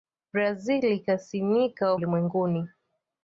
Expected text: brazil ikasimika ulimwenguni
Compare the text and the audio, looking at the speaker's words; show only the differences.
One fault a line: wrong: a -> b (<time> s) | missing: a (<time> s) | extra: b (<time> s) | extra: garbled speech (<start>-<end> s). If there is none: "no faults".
no faults